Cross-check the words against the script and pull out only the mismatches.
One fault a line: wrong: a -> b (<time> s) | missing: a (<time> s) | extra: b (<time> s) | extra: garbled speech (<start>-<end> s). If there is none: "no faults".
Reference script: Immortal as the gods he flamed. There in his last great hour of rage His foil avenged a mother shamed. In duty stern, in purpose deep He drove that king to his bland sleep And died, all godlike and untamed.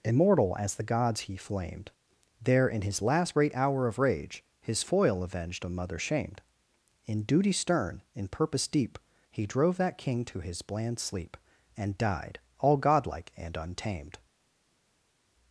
no faults